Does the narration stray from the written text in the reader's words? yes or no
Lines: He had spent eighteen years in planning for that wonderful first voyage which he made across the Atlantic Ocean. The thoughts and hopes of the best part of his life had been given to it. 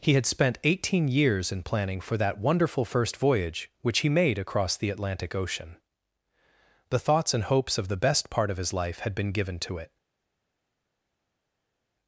no